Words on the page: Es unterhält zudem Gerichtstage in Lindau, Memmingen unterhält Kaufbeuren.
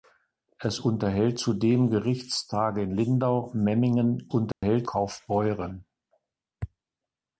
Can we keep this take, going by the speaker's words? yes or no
yes